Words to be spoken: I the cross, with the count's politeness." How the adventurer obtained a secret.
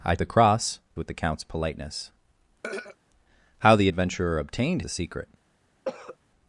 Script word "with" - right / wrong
right